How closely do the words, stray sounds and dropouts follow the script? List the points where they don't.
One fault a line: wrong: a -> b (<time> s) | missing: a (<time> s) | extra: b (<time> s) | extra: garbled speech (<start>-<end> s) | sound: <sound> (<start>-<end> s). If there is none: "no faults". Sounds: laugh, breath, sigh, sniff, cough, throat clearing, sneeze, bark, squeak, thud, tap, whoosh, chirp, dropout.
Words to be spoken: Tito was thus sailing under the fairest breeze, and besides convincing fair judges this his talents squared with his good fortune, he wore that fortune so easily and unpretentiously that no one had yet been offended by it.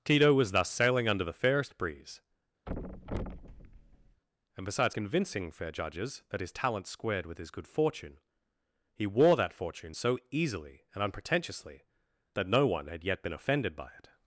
sound: thud (2.7-4.2 s)
wrong: this -> that (6.3 s)